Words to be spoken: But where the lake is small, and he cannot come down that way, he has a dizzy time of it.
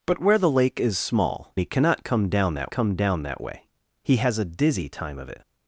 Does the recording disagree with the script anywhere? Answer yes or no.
yes